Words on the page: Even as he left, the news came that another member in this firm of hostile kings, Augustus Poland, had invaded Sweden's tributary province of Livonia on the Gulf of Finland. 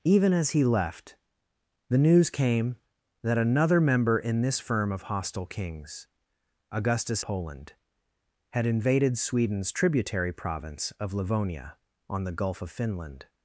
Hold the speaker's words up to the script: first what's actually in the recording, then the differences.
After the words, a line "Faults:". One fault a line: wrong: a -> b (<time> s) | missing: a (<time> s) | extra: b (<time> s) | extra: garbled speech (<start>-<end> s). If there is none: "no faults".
Even as he left, the news came that another member in this firm of hostile kings, Augustus Poland, had invaded Sweden's tributary province of Livonia on the Gulf of Finland.
Faults:
no faults